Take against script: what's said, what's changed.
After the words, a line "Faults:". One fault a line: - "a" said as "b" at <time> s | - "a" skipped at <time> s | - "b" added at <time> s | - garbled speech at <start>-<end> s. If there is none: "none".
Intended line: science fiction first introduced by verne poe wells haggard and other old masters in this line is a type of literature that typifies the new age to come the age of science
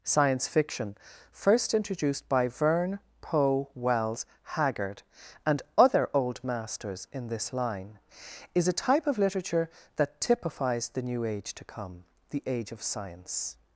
science fiction first introduced by verne poe wells haggard and other old masters in this line is a type of literature that typifies the new age to come the age of science
Faults:
none